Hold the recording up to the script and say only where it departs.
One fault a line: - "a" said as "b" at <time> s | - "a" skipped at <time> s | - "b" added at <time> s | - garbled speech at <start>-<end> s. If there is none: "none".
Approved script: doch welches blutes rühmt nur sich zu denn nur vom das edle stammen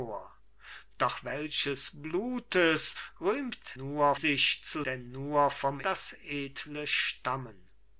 none